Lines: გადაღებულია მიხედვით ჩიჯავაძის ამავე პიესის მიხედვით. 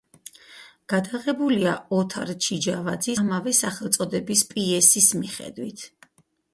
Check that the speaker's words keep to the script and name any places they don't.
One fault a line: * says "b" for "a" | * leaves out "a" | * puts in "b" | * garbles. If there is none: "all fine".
* says "ოთარ" for "მიხედვით"
* puts in "სახელწოდების"